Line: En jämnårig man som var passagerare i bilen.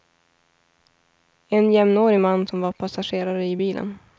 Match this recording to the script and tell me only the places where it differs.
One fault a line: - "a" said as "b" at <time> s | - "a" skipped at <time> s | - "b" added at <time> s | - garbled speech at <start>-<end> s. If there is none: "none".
none